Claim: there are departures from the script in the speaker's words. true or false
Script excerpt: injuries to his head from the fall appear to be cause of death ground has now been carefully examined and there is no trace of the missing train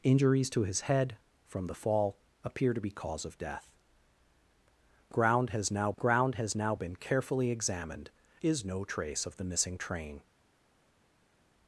true